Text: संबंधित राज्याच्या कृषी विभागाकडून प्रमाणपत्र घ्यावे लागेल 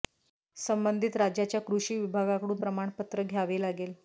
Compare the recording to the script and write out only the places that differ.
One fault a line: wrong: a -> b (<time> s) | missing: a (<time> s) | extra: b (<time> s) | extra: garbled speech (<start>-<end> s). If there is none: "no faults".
no faults